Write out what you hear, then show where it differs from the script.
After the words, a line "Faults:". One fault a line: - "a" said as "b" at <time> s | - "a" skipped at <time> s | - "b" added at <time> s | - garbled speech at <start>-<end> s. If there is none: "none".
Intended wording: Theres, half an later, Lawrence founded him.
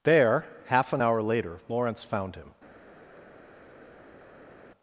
There, half an hour later, Lawrence found him.
Faults:
- "Theres" said as "There" at 0.0 s
- "hour" added at 1.0 s
- "founded" said as "found" at 2.0 s